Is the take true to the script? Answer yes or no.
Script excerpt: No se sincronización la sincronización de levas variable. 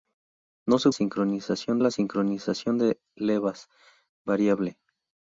yes